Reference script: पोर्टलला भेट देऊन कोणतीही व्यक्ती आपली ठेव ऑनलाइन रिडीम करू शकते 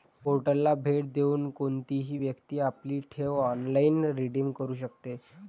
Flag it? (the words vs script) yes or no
no